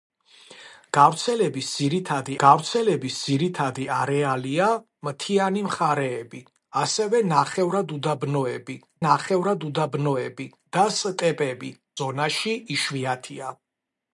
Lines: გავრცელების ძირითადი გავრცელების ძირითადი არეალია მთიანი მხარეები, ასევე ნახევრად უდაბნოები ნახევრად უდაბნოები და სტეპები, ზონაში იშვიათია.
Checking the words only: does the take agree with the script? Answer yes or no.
yes